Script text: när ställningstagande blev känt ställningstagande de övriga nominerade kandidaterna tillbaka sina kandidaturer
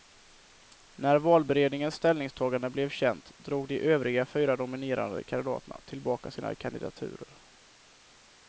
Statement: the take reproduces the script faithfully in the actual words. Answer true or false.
false